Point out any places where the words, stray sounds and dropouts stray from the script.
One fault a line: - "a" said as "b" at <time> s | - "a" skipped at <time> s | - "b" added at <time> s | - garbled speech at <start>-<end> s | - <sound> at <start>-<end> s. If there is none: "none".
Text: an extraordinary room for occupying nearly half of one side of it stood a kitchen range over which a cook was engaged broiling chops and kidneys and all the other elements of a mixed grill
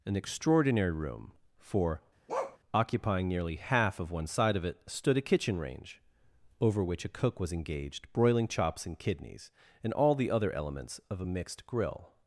- bark at 2.3-2.6 s